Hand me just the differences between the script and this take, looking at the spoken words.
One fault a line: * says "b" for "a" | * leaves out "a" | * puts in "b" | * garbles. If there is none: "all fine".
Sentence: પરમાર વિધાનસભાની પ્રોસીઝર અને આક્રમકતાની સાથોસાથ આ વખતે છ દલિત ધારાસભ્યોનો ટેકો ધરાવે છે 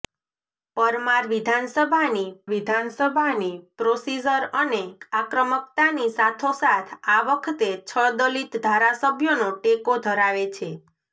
* puts in "વિધાનસભાની"